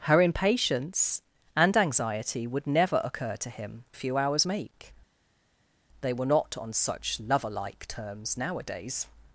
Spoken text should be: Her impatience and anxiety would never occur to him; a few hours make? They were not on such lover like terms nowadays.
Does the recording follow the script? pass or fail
pass